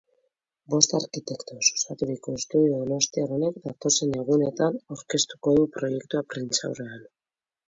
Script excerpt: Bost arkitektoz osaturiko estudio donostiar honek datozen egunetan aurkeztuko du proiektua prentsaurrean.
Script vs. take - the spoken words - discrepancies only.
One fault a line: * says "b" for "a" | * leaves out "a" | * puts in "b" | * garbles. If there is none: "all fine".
all fine